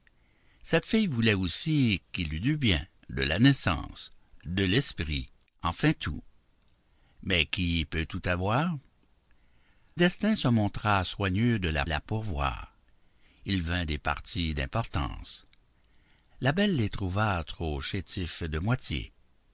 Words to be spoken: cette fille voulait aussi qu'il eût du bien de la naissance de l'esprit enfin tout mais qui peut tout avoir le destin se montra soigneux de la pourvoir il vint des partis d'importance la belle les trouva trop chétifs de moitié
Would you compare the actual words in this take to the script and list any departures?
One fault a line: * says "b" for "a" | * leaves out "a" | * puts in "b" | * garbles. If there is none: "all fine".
* leaves out "le"
* puts in "la"